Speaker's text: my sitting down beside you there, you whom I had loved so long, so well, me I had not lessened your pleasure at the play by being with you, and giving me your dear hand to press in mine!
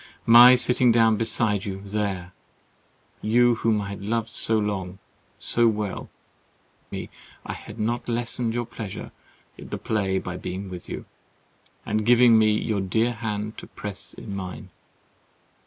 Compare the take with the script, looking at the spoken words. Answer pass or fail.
pass